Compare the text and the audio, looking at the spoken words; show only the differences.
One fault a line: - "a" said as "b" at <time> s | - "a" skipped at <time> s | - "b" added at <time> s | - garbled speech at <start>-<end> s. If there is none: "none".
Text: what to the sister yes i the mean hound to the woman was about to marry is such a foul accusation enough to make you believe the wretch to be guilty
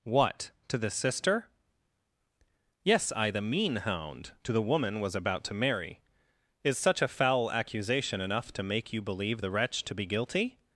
none